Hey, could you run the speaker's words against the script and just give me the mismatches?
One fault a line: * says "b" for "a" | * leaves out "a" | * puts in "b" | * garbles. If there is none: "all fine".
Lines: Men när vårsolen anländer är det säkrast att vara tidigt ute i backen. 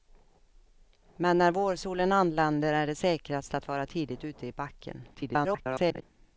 * garbles